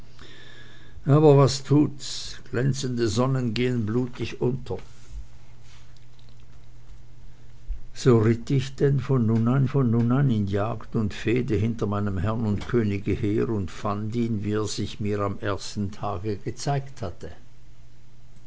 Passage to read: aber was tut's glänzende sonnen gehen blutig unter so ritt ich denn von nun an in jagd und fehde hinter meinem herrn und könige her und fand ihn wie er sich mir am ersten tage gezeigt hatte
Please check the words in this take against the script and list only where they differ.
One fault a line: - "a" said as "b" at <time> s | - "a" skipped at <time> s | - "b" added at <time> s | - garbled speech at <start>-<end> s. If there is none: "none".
- "von nun an" added at 9.6 s